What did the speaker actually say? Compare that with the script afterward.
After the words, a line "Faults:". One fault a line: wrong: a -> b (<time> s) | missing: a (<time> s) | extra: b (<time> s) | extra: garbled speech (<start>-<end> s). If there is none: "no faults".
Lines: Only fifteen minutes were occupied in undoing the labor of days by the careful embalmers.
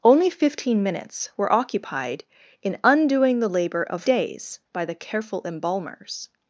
Only fifteen minutes were occupied in undoing the labor of days by the careful embalmers.
Faults:
no faults